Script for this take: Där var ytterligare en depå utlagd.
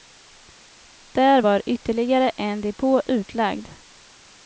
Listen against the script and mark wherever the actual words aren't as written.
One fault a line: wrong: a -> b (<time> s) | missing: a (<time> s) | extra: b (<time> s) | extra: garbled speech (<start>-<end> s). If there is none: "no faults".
no faults